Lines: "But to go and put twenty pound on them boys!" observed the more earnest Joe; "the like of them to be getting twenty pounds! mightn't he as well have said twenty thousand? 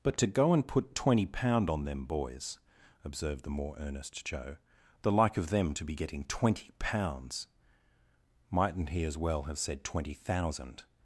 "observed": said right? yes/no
yes